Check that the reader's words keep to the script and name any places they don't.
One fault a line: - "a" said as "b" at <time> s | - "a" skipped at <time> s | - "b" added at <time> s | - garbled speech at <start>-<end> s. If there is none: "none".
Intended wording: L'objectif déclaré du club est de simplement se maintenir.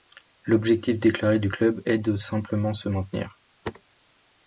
none